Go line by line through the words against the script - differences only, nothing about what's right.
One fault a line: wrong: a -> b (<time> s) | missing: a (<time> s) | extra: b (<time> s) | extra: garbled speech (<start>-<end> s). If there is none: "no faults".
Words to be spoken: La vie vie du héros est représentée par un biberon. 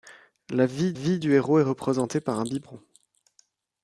no faults